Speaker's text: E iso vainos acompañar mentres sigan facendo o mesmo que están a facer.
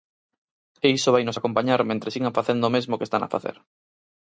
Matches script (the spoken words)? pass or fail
pass